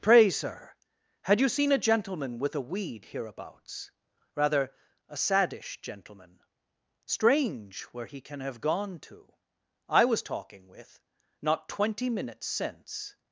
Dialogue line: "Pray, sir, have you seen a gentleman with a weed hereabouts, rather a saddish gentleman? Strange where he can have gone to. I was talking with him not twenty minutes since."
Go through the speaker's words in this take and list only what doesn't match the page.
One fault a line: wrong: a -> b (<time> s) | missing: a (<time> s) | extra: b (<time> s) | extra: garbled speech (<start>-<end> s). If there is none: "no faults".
wrong: have -> had (1.2 s)
missing: him (11.0 s)